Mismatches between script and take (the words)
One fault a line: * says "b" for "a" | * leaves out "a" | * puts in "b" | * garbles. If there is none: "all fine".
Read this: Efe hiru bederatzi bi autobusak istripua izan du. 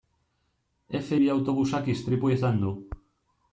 * leaves out "hiru bederatzi"